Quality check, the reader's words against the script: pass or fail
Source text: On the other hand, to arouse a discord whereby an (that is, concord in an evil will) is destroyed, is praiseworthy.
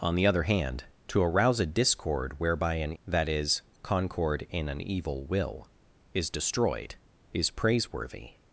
pass